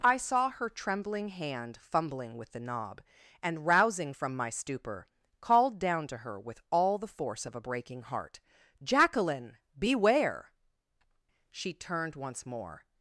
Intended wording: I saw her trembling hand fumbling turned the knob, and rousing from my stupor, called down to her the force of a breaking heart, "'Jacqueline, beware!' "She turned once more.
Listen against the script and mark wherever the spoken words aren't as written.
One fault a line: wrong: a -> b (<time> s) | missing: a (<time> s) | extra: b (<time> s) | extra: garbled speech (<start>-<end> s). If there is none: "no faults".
wrong: turned -> with (2.4 s)
extra: with all (6.4 s)